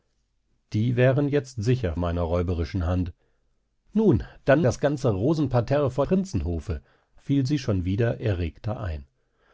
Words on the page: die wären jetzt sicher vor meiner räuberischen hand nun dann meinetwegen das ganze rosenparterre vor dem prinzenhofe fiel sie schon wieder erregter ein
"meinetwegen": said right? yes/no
no